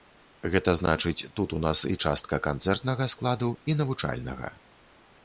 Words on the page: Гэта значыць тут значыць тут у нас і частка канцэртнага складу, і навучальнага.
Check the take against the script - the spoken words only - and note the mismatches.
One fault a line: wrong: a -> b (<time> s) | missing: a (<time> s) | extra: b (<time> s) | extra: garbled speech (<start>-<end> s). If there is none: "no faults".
missing: значыць тут (1.5 s)